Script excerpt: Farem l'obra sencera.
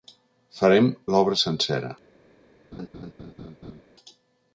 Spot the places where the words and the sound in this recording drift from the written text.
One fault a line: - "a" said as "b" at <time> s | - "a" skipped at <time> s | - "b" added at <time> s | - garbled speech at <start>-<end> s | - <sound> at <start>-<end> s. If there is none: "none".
- laugh at 2.7-3.8 s